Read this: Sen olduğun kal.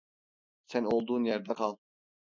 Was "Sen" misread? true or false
false